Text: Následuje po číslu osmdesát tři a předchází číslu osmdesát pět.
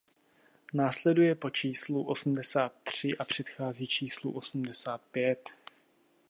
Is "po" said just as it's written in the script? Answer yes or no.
yes